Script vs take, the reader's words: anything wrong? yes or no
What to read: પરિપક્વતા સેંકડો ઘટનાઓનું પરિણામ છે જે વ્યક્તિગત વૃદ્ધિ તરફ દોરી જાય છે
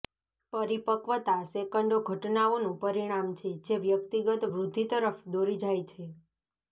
no